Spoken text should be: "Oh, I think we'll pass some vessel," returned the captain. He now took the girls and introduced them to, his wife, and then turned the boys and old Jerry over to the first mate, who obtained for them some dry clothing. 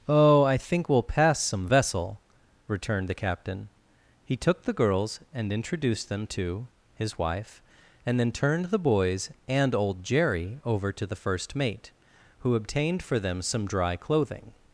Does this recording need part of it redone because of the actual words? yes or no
yes